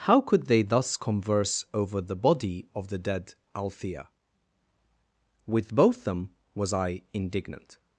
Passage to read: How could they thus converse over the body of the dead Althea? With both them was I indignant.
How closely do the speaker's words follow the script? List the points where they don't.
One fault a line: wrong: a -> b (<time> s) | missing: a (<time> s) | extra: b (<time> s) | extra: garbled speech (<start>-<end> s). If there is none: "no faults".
no faults